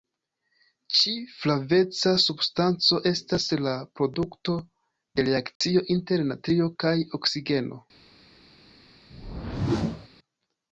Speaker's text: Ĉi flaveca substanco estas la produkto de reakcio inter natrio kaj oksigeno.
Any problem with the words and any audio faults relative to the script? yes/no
yes